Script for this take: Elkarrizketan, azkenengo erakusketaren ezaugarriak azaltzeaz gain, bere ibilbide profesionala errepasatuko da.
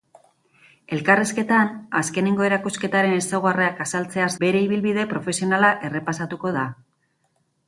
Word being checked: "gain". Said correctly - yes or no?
no